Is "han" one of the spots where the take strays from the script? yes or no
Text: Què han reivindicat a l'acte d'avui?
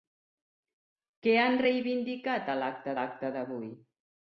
no